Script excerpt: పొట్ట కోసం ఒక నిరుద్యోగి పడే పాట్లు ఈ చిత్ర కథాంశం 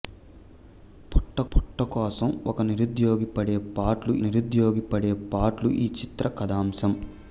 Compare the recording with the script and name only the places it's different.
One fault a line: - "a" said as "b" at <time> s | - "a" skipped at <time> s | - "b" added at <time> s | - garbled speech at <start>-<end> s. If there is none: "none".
- "పొట్ట" added at 1.5 s
- "నిరుద్యోగి పడే పాట్లు" added at 4.2 s